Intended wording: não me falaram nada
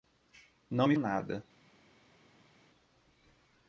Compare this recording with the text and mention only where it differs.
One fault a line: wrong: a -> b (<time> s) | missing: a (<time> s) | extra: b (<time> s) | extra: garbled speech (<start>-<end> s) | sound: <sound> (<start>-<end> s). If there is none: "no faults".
missing: falaram (0.9 s)